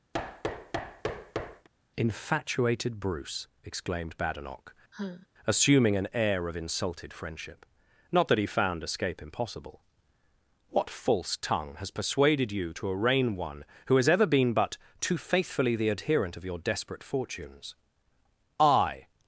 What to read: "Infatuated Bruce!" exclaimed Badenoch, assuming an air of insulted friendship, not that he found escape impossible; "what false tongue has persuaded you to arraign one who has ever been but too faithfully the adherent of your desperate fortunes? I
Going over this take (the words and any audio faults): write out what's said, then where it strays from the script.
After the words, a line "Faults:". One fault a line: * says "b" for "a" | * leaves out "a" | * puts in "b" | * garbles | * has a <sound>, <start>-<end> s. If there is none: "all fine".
"Infatuated Bruce!" exclaimed Badenoch, assuming an air of insulted friendship, not that he found escape impossible; "what false tongue has persuaded you to arraign one who has ever been but too faithfully the adherent of your desperate fortunes? I
Faults:
* has a thud, 0.1-1.7 s
* has a sigh, 4.9-5.3 s